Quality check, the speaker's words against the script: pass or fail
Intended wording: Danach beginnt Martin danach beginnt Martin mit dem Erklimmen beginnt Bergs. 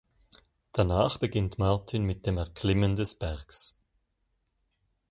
fail